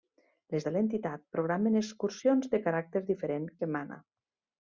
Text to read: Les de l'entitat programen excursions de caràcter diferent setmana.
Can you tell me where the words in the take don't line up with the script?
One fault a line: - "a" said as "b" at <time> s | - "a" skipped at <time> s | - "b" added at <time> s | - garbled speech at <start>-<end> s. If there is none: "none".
none